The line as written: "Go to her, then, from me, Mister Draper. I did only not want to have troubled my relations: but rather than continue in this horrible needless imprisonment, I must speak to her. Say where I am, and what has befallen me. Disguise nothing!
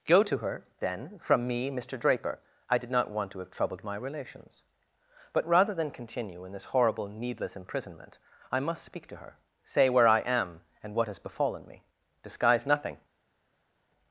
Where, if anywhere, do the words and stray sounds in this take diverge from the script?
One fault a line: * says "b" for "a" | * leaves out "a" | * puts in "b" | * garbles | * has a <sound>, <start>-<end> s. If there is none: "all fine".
* leaves out "only"